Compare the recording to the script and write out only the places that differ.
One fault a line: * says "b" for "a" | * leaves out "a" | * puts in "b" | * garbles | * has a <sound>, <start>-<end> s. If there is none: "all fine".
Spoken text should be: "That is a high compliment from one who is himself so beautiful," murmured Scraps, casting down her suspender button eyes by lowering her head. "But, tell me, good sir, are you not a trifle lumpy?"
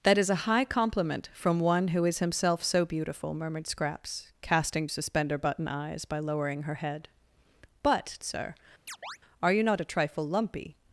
* leaves out "down her"
* leaves out "tell me good"
* has a chirp, 8.9-9.2 s